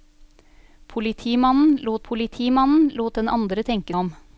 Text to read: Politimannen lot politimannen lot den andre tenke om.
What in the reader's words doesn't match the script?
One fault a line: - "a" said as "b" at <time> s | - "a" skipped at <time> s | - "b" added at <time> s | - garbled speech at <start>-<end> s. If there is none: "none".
none